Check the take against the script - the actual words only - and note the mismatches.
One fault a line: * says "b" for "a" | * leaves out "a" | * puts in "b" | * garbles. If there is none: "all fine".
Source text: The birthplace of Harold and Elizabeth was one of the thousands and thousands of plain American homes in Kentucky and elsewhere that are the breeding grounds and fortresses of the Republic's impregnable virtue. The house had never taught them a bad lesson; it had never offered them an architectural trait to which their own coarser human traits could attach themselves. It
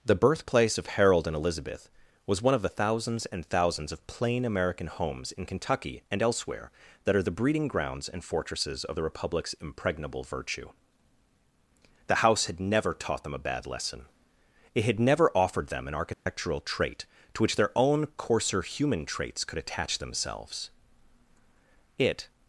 all fine